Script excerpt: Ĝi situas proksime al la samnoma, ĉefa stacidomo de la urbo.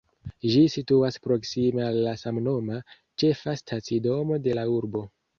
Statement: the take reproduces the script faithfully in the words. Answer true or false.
true